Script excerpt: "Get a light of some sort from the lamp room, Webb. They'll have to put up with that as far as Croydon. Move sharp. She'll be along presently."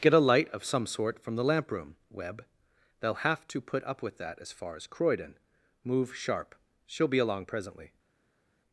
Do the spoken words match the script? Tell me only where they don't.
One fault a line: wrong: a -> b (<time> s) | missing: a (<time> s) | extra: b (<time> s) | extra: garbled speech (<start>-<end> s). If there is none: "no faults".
no faults